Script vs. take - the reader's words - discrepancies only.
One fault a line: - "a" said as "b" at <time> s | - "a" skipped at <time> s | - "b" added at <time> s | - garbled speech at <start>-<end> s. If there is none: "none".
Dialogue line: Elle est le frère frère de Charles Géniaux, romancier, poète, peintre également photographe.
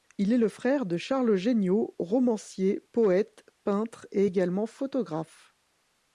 - "Elle" said as "Il" at 0.2 s
- "frère" skipped at 0.9 s
- "et" added at 4.1 s